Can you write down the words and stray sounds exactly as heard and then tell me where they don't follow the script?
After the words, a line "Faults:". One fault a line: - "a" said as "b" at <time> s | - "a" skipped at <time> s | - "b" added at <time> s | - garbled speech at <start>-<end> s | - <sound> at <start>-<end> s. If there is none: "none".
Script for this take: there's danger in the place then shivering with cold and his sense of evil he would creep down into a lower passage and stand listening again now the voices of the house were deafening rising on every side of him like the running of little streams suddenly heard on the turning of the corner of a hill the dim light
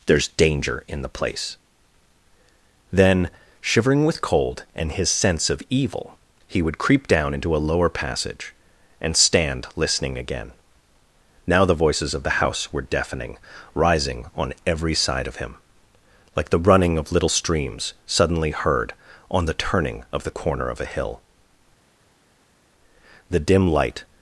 there's danger in the place then shivering with cold and his sense of evil he would creep down into a lower passage and stand listening again now the voices of the house were deafening rising on every side of him like the running of little streams suddenly heard on the turning of the corner of a hill the dim light
Faults:
none